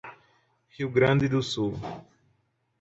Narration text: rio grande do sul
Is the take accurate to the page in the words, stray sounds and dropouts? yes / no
yes